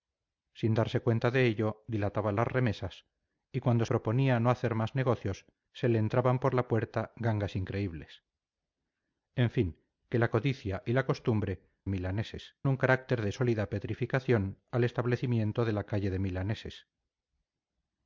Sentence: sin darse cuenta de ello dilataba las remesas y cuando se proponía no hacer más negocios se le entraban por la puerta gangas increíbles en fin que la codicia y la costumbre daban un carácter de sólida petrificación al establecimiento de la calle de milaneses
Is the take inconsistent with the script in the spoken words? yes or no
yes